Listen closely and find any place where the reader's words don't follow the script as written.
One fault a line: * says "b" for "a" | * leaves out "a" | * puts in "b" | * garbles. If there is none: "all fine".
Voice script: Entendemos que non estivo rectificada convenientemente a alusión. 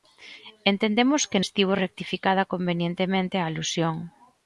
* leaves out "non"